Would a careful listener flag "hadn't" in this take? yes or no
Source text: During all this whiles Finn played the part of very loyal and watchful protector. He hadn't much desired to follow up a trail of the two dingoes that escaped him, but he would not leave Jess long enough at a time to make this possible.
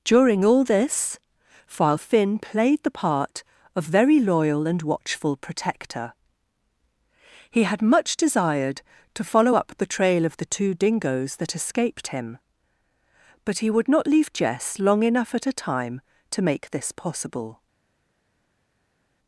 yes